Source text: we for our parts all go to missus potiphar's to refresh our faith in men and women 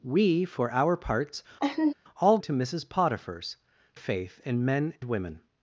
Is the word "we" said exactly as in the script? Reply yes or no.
yes